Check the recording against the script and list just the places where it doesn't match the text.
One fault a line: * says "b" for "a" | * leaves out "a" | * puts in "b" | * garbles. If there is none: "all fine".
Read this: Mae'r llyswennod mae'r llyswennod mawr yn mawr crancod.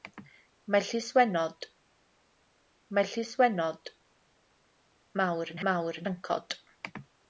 all fine